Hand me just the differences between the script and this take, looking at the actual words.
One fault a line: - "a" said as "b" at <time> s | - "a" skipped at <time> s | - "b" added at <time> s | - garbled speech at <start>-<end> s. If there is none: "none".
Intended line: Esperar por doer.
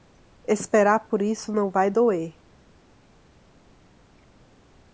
- "isso não vai" added at 1.2 s